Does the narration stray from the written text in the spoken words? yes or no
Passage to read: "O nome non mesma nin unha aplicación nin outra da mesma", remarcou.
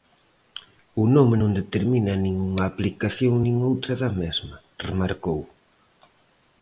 yes